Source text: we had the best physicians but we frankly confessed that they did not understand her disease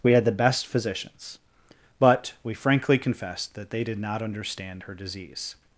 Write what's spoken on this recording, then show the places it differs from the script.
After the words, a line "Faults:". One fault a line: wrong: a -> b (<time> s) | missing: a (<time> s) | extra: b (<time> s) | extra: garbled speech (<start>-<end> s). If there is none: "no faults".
we had the best physicians but we frankly confessed that they did not understand her disease
Faults:
no faults